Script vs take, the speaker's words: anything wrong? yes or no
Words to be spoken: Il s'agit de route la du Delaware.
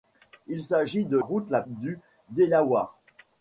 no